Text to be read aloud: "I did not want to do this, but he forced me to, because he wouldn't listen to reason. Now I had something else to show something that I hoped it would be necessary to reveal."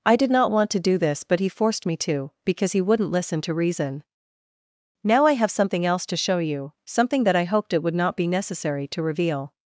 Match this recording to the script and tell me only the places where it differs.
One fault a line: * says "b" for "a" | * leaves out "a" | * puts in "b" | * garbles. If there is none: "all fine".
* says "have" for "had"
* puts in "you"
* puts in "not"